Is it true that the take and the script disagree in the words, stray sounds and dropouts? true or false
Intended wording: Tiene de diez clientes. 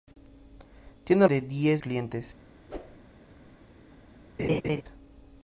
true